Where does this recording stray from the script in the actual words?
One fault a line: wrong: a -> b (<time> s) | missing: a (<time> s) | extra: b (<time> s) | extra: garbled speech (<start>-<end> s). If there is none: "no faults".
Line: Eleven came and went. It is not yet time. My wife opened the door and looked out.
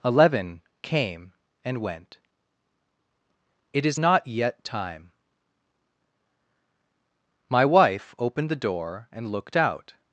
no faults